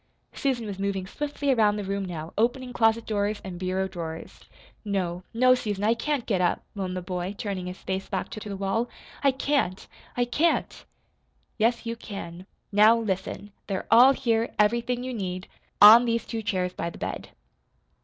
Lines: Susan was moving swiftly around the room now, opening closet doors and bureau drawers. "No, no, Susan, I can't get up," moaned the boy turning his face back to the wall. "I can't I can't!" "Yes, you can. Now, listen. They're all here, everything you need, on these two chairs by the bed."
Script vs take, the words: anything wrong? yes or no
yes